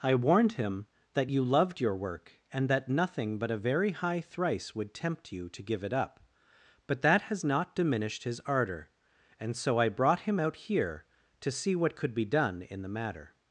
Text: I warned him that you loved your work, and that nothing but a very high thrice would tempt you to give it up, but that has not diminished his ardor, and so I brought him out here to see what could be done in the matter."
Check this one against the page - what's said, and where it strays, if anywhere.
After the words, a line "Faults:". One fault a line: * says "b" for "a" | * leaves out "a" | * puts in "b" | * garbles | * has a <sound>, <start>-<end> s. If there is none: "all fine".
I warned him that you loved your work, and that nothing but a very high thrice would tempt you to give it up, but that has not diminished his ardor, and so I brought him out here to see what could be done in the matter."
Faults:
all fine